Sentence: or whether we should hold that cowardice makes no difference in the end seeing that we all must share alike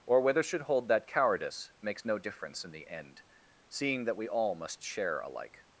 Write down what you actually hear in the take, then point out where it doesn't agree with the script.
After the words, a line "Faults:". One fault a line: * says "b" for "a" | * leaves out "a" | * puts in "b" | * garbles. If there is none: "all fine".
or whether should hold that cowardice makes no difference in the end seeing that we all must share alike
Faults:
* leaves out "we"